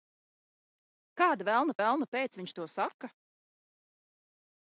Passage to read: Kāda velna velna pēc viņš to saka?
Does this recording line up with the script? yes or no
yes